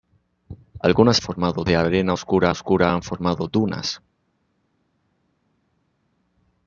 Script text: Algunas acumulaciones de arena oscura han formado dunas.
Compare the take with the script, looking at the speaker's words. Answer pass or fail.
fail